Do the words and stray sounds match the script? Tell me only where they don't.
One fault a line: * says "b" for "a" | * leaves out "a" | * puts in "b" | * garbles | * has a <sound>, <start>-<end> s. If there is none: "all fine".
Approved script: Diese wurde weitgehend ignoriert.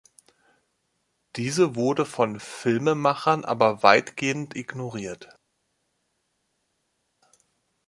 * puts in "von Filmemachern aber"